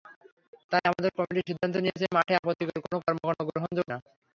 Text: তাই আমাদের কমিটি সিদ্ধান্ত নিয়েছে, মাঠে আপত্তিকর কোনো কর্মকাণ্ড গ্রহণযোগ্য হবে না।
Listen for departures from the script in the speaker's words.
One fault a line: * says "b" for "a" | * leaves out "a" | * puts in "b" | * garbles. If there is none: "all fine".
* leaves out "হবে"